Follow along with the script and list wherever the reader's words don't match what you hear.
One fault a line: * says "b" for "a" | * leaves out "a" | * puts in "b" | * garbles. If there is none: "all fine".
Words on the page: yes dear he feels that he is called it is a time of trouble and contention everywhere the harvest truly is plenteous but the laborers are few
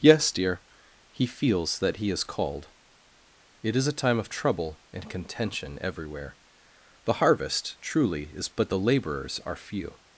* leaves out "plenteous"